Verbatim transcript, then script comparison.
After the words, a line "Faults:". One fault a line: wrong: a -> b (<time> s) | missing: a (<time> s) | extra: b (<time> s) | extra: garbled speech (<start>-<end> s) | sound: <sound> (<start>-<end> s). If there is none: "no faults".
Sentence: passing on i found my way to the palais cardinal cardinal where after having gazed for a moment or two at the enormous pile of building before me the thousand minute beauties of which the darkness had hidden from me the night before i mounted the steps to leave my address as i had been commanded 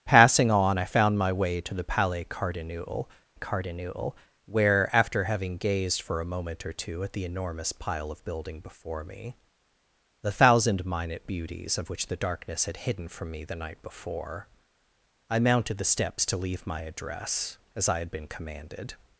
passing on i found my way to the palais cardinal cardinal where after having gazed for a moment or two at the enormous pile of building before me the thousand minute beauties of which the darkness had hidden from me the night before i mounted the steps to leave my address as i had been commanded
Faults:
no faults